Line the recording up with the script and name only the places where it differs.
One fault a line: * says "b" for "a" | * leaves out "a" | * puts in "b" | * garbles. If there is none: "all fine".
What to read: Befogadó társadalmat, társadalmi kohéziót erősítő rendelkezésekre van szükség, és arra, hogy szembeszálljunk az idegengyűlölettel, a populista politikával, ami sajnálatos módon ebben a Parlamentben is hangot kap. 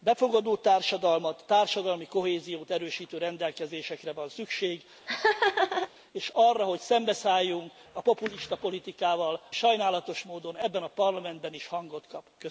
* leaves out "az idegengyűlölettel"
* leaves out "ami"